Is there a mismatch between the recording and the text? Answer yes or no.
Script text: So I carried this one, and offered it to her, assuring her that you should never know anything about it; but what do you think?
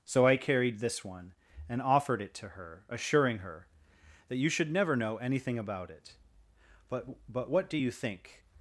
yes